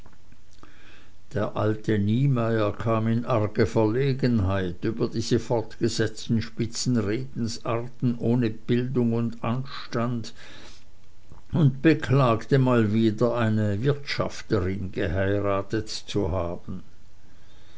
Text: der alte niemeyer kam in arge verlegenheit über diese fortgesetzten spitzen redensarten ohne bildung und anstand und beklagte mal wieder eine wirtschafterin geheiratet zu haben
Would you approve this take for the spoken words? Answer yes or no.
yes